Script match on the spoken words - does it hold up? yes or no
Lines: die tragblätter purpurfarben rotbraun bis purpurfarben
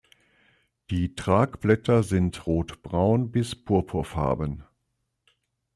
no